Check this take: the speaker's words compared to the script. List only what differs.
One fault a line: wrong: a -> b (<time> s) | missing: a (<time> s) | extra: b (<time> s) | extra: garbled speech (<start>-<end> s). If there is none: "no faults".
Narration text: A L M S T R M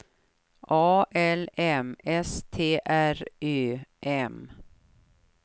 extra: Ö (3.4 s)